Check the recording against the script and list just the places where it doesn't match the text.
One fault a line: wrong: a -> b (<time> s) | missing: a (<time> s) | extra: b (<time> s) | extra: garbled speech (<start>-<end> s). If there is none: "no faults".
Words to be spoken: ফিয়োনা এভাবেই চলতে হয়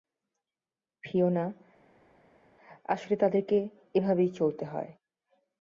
extra: আসলে তাদেরকে (2.9 s)